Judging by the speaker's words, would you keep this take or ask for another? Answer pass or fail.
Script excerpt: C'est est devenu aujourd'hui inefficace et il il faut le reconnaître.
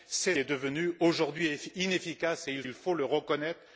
pass